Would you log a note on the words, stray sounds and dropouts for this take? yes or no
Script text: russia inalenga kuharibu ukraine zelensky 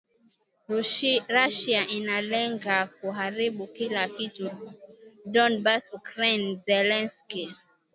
yes